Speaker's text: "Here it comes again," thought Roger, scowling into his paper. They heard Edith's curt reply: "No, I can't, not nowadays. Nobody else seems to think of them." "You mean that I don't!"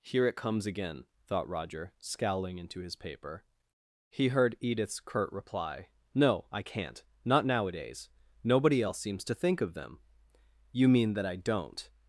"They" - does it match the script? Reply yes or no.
no